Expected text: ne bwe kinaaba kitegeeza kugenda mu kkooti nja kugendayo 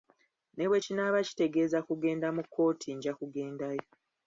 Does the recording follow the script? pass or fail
pass